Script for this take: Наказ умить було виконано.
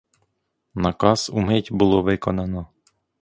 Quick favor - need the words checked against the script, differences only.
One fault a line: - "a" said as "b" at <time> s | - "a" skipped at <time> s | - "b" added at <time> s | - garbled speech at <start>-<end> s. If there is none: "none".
none